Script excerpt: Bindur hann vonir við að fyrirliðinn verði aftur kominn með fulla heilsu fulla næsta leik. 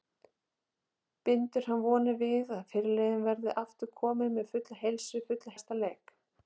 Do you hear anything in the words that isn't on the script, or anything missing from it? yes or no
no